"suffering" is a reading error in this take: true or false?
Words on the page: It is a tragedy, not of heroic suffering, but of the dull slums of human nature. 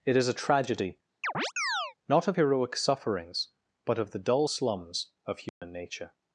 true